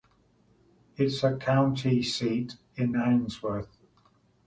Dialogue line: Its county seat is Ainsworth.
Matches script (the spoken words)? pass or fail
pass